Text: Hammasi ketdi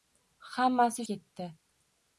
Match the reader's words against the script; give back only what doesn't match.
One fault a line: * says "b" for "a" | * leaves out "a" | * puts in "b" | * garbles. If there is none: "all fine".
all fine